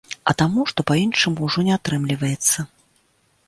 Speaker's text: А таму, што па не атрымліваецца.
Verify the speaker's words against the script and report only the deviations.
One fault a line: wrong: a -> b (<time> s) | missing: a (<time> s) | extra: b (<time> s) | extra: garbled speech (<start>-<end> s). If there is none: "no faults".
extra: іншаму ўжо (1.0 s)